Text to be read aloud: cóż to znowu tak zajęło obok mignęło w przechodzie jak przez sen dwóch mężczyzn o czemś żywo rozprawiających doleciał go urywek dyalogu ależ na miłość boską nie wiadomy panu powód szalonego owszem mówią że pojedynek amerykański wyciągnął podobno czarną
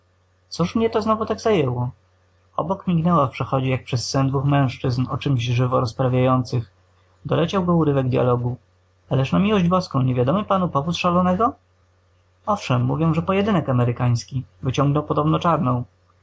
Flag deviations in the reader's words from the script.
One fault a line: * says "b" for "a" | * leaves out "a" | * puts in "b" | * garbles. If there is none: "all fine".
* puts in "mnie"